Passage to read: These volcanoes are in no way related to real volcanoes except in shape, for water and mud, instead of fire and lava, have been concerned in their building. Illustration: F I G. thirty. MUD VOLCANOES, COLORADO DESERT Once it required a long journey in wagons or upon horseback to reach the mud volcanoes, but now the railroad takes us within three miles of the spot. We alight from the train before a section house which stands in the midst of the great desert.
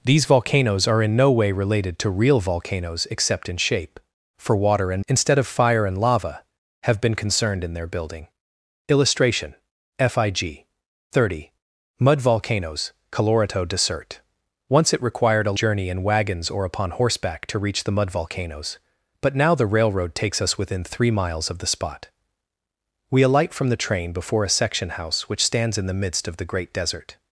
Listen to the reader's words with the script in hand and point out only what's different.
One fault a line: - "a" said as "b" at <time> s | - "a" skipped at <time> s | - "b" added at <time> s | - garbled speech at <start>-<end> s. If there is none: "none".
- "mud" skipped at 5.0 s
- "long" skipped at 15.6 s